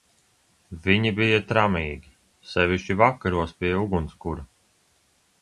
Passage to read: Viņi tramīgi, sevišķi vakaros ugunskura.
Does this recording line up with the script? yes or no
no